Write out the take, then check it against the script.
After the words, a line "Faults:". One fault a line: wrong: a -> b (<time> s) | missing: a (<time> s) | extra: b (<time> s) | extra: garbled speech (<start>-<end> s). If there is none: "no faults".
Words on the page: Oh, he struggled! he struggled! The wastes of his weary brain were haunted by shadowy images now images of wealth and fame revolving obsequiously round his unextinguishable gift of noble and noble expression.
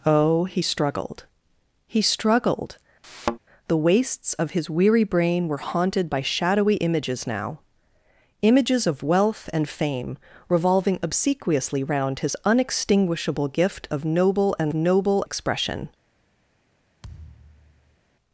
Oh, he struggled! he struggled! The wastes of his weary brain were haunted by shadowy images now images of wealth and fame revolving obsequiously round his unextinguishable gift of noble and noble expression.
Faults:
no faults